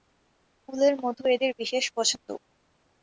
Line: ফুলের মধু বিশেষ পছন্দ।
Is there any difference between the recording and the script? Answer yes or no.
yes